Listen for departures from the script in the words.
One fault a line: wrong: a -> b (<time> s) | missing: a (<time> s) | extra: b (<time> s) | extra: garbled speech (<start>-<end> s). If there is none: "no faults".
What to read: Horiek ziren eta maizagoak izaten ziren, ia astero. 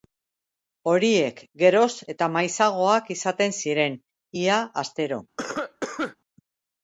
wrong: ziren -> geroz (1.6 s)